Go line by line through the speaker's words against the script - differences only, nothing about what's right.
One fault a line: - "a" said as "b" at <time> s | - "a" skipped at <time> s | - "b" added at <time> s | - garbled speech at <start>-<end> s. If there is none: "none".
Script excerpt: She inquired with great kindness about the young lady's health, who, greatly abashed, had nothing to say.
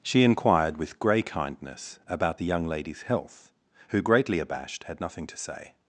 - "great" said as "grey" at 1.0 s